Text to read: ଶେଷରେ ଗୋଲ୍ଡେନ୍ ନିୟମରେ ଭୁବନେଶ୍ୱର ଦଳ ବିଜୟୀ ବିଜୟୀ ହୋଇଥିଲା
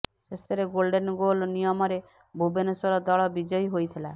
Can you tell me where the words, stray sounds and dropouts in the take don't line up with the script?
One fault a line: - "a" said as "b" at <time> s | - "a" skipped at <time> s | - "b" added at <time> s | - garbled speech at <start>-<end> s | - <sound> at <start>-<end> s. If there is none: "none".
- "ଗୋଲ୍" added at 1.2 s
- "ବିଜୟୀ" skipped at 3.7 s